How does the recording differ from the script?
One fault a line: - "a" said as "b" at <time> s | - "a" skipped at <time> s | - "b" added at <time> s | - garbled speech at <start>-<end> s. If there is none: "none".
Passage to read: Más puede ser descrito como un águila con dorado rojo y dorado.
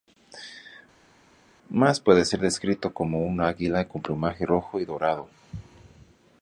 - "dorado" said as "plumaje" at 4.0 s